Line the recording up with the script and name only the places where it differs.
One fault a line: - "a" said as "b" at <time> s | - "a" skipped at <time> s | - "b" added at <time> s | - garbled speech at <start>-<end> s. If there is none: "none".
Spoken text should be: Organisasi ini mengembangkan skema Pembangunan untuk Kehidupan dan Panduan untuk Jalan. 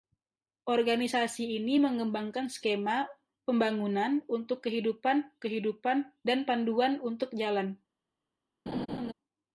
- "Kehidupan" added at 5.4 s